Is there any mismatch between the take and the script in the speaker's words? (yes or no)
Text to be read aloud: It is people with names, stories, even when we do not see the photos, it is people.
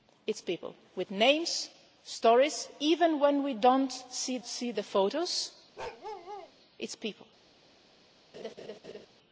yes